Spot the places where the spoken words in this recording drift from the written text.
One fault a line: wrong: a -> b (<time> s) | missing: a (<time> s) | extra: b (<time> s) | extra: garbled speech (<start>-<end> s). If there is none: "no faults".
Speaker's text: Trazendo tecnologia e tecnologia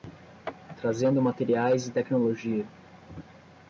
wrong: tecnologia -> materiais (1.2 s)